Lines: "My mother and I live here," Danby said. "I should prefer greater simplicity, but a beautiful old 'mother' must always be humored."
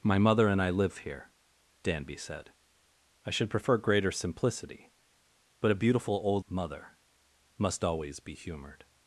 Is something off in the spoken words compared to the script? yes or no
no